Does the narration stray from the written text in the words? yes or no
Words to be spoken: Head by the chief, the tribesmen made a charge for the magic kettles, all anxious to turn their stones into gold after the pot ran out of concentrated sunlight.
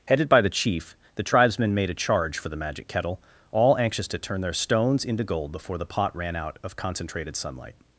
yes